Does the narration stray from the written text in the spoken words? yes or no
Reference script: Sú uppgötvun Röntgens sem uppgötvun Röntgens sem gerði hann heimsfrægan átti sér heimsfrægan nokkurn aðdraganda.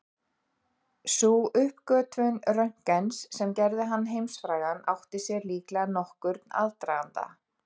yes